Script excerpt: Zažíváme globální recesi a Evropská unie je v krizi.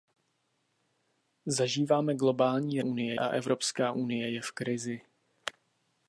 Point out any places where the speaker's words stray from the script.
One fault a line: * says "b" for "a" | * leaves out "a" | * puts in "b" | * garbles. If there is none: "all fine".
* says "unie" for "recesi"